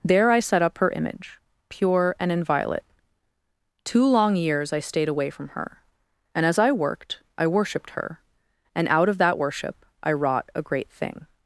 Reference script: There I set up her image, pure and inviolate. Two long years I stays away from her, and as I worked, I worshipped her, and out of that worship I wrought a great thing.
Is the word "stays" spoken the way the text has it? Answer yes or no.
no